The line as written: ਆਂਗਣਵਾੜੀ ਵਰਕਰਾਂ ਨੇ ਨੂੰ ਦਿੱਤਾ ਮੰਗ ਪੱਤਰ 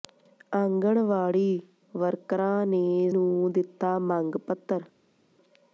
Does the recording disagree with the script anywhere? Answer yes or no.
no